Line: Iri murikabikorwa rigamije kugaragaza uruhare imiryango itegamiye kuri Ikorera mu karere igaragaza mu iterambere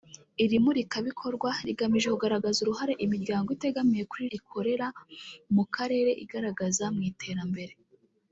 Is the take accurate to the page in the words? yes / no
yes